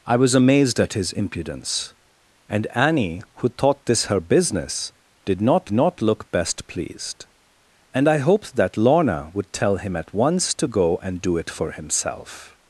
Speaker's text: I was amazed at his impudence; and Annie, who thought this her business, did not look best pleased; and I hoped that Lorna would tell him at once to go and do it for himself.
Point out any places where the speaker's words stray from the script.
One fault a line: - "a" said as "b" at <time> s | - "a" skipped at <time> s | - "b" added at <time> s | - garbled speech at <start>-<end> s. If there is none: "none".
- "not" added at 5.7 s